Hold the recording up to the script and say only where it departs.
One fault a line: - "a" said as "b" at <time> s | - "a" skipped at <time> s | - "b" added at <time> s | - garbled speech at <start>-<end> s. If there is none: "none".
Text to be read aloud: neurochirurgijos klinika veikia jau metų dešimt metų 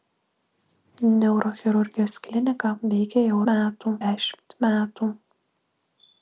none